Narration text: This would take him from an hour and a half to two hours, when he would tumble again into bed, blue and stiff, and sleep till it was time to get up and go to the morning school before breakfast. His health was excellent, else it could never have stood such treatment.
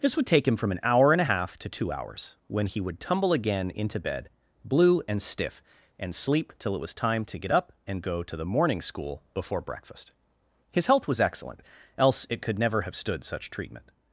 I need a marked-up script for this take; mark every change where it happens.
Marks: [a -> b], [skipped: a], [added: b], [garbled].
This would take him from an hour and a half to two hours, when he would tumble again into bed, blue and stiff, and sleep till it was time to get up and go to the morning school before breakfast. His health was excellent, else it could never have stood such treatment.